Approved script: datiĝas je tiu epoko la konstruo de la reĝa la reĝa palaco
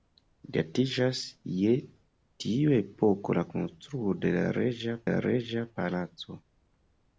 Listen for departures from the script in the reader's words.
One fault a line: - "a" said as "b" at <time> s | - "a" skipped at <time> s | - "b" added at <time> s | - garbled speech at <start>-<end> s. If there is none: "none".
none